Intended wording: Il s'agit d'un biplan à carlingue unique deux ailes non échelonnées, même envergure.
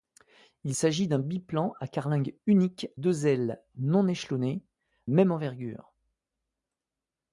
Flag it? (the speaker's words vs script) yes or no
no